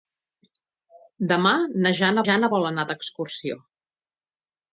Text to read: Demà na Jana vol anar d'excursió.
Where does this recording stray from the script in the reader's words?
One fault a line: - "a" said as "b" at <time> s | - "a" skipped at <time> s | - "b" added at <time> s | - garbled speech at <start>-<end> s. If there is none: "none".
- "Jana" added at 2.3 s